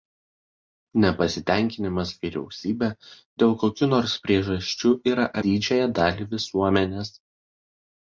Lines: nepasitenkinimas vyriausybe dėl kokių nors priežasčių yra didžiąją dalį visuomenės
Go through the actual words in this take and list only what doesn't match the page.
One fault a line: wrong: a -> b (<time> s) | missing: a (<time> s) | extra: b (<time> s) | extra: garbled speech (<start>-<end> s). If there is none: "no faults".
no faults